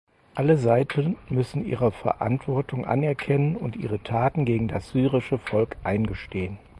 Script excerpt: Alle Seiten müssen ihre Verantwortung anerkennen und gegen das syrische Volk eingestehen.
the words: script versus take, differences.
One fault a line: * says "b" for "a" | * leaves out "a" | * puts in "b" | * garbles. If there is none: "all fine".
* puts in "ihre Taten"